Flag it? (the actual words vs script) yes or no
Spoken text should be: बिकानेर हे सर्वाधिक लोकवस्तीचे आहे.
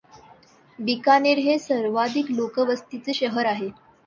yes